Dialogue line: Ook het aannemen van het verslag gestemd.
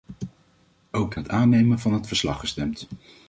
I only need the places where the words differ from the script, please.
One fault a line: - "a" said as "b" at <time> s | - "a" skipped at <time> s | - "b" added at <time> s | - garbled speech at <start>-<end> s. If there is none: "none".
none